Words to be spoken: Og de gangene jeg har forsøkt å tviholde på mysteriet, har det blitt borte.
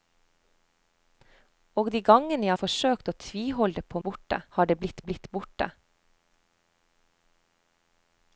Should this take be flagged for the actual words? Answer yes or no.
yes